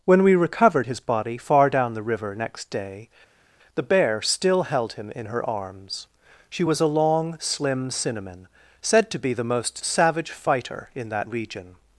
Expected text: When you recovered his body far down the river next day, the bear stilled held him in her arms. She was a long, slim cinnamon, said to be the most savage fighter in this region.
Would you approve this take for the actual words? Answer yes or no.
no